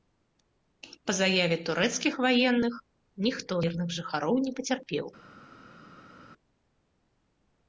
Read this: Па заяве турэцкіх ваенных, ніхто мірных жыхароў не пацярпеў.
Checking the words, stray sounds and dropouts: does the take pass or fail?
pass